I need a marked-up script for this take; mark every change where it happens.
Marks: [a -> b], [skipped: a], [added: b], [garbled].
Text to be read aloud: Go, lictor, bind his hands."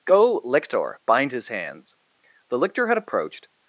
Go, lictor, bind his hands." [added: The lictor had approached]